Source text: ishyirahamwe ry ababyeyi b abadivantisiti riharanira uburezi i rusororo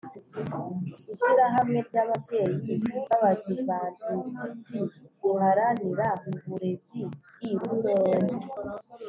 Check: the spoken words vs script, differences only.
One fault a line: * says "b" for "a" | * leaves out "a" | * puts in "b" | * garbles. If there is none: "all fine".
all fine